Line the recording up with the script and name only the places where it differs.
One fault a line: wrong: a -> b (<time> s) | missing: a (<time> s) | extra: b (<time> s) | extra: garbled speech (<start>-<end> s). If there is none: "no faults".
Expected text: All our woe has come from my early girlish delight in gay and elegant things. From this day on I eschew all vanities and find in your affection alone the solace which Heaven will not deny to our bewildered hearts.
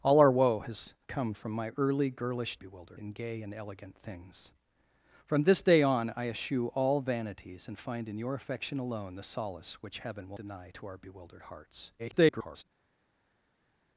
wrong: delight -> bewildered (2.6 s)
missing: not (10.4 s)
extra: garbled speech (12.0-12.6 s)